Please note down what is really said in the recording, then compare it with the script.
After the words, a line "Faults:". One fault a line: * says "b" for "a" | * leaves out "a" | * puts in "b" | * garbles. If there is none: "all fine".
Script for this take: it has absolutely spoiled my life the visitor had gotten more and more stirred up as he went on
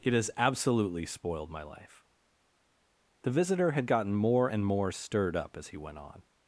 it has absolutely spoiled my life the visitor had gotten more and more stirred up as he went on
Faults:
all fine